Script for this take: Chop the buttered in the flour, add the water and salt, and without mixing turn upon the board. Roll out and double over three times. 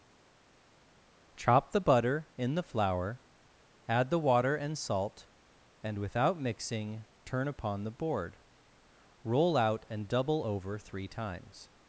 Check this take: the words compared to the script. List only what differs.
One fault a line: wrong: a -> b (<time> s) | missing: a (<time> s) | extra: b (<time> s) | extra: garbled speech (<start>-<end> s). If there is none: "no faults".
wrong: buttered -> butter (1.8 s)